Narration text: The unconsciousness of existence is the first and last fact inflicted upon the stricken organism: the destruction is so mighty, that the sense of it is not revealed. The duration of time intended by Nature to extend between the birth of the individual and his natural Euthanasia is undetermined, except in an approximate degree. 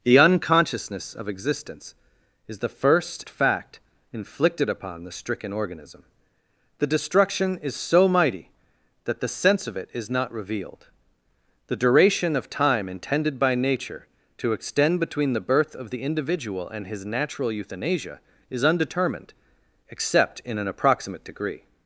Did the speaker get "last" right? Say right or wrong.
wrong